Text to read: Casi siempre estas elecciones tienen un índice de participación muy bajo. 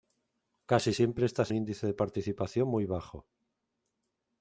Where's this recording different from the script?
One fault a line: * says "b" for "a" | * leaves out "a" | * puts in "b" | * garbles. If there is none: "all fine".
* leaves out "elecciones tienen un"